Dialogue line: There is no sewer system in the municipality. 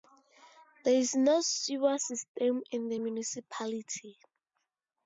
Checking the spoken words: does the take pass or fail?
pass